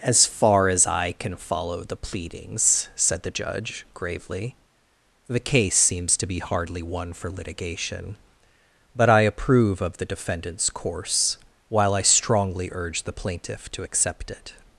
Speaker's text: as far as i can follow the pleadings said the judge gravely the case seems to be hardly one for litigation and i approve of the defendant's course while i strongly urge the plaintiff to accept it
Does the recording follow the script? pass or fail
fail